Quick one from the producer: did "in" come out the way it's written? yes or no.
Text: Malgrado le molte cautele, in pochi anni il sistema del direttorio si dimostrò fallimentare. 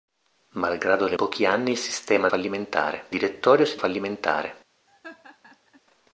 no